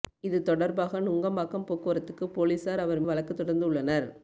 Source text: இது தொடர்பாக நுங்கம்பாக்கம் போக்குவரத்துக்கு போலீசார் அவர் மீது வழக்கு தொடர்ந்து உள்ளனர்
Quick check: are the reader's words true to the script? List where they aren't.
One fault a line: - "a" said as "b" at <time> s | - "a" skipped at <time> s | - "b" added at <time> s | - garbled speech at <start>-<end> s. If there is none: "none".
- "மீது" skipped at 3.0 s